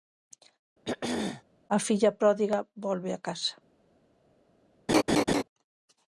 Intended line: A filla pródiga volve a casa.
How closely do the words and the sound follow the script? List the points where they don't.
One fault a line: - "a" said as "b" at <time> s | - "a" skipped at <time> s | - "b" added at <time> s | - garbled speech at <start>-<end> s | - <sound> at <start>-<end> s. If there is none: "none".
- throat clearing at 0.8-1.4 s
- laugh at 4.9-5.4 s